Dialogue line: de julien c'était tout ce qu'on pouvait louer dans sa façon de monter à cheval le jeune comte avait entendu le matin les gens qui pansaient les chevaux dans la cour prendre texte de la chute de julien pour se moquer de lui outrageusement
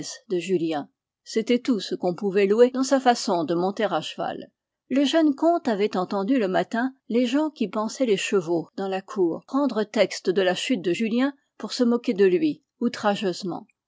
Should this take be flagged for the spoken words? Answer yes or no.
no